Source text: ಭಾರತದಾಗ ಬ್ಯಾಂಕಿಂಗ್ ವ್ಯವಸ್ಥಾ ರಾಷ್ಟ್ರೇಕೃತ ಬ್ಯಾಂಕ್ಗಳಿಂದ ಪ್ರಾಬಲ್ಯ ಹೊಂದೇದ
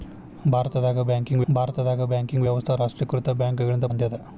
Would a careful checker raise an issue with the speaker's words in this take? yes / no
yes